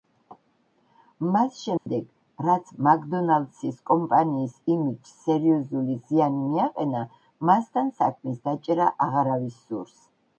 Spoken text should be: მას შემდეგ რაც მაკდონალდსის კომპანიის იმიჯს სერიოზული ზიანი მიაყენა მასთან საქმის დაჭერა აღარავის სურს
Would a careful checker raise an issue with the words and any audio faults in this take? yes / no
yes